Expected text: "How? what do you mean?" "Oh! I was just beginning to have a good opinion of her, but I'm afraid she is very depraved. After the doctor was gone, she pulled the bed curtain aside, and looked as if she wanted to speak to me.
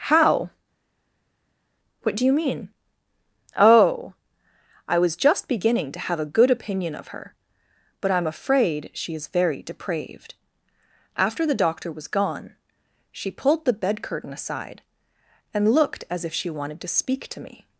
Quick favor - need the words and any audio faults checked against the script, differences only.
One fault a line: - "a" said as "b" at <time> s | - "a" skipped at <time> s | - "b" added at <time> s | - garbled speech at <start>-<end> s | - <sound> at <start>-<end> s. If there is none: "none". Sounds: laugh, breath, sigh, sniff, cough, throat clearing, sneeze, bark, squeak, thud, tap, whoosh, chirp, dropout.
none